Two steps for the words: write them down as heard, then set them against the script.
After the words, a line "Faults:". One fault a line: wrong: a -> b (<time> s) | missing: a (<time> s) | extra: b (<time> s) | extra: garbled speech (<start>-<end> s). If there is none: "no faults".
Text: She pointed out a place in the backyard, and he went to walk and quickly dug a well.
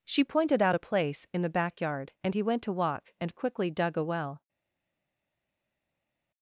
She pointed out a place in the backyard, and he went to walk and quickly dug a well.
Faults:
no faults